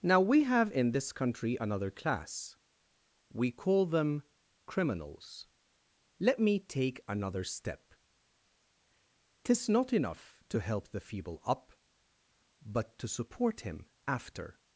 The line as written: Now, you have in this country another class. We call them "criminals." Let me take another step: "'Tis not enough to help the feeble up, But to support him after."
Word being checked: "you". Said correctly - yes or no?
no